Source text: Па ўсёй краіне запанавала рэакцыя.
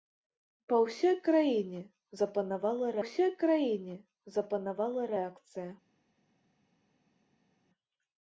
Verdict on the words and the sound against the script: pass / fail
fail